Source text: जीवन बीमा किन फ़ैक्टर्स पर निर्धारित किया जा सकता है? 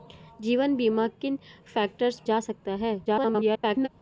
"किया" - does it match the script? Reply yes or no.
no